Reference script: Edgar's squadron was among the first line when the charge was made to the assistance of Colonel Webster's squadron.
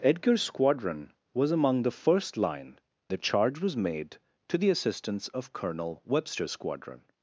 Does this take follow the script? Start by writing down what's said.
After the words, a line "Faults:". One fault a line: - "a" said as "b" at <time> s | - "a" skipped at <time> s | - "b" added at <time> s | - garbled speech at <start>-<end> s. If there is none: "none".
Edgar's squadron was among the first line the charge was made to the assistance of Colonel Webster's squadron.
Faults:
- "when" skipped at 2.8 s